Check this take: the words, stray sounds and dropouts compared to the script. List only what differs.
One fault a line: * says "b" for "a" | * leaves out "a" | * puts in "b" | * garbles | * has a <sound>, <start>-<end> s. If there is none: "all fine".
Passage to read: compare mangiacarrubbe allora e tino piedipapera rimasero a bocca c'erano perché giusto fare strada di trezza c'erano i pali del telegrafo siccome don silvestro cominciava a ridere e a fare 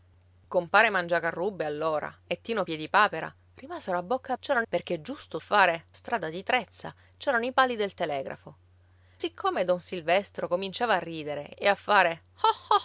all fine